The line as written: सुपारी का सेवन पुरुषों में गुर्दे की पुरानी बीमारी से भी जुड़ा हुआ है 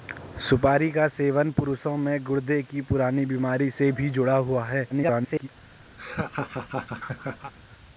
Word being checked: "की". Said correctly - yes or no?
yes